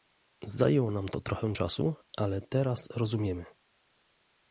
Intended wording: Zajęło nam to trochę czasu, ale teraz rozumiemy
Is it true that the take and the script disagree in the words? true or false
false